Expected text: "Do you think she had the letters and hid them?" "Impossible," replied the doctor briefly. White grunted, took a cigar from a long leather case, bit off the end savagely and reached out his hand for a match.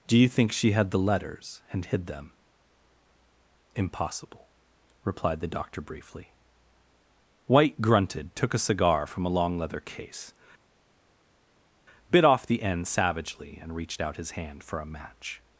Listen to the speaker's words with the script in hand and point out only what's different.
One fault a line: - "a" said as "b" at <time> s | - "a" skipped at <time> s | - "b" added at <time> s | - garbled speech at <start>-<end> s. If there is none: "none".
none